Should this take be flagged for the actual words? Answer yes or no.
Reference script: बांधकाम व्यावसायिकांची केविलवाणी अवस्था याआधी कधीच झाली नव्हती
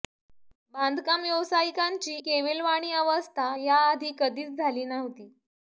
no